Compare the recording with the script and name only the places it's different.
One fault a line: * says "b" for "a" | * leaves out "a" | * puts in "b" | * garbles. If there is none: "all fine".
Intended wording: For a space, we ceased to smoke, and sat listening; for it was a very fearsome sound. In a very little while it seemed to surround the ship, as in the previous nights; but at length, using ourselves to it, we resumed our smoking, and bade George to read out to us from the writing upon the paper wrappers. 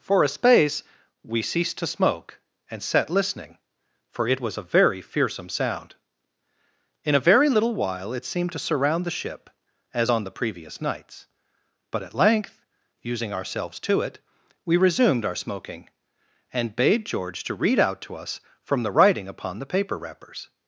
* says "on" for "in"